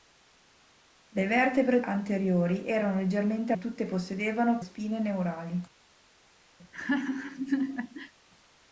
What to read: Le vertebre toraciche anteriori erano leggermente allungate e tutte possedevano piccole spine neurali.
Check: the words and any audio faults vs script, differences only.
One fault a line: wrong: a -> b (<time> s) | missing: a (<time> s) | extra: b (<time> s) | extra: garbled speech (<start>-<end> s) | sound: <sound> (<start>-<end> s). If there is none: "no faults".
missing: toraciche (1.8 s)
missing: allungate (3.5 s)
missing: piccole (4.6 s)
sound: laugh (6.6-8.1 s)